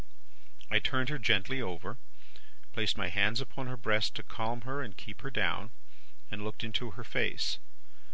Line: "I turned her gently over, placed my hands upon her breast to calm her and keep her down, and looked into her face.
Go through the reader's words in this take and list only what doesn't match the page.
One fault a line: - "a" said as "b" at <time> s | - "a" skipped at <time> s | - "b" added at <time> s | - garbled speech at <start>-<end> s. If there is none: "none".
none